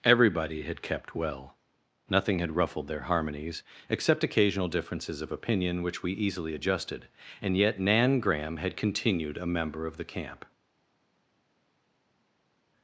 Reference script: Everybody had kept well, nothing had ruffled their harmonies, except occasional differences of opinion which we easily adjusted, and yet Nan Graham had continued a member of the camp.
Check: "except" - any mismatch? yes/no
no